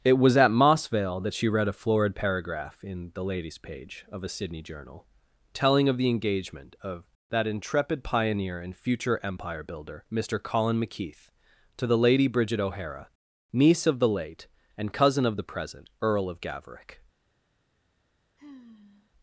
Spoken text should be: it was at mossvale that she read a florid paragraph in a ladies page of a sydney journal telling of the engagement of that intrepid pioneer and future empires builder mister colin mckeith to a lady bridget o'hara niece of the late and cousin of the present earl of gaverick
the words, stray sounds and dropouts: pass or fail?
fail